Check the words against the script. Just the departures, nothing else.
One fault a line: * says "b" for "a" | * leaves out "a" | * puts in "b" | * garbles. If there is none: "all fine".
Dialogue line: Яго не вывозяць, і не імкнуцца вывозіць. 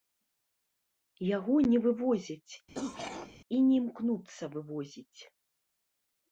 all fine